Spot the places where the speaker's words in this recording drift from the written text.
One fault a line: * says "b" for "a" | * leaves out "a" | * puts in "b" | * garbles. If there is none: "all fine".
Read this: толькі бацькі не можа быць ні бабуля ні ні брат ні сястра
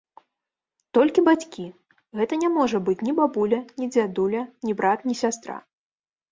* puts in "гэта"
* puts in "дзядуля"